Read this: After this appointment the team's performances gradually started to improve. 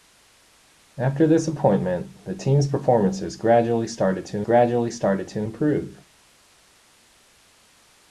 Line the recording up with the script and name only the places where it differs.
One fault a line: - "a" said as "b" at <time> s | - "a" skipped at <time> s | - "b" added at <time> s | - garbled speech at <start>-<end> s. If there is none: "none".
- "gradually started to" added at 4.4 s